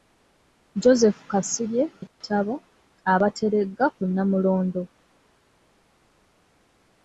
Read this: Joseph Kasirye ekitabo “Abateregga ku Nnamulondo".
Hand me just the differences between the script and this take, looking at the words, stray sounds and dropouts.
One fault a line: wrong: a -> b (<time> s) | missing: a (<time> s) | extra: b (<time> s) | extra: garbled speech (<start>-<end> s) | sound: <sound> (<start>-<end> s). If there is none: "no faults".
sound: dropout (2.1-2.2 s)